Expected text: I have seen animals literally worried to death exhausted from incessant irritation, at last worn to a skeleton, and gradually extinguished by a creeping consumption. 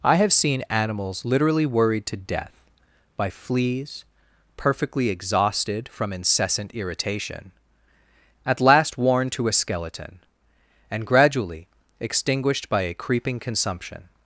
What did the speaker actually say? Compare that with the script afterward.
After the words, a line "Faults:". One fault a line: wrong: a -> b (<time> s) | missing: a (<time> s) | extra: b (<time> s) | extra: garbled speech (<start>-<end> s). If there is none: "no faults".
I have seen animals literally worried to death by fleas, perfectly exhausted from incessant irritation, at last worn to a skeleton, and gradually extinguished by a creeping consumption.
Faults:
extra: by fleas perfectly (3.2 s)